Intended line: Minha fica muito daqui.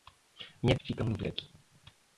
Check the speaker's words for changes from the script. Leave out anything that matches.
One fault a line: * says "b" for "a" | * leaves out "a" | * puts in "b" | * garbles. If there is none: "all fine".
all fine